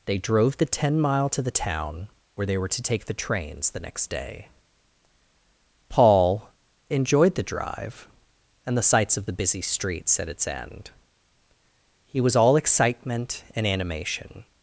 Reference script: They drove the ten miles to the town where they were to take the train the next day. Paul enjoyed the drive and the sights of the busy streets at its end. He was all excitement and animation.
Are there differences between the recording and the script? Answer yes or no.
yes